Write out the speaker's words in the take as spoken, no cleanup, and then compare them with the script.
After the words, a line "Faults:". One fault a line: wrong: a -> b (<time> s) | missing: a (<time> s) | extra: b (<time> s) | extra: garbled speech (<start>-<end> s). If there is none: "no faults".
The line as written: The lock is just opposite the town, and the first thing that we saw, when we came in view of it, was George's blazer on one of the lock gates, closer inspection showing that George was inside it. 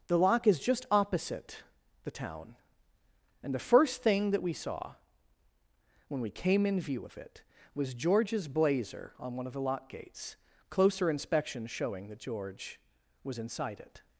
The lock is just opposite the town, and the first thing that we saw, when we came in view of it, was George's blazer on one of the lock gates, closer inspection showing that George was inside it.
Faults:
no faults